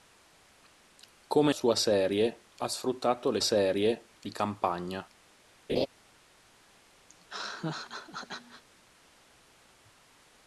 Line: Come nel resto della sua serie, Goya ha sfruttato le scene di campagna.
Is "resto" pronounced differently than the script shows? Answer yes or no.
yes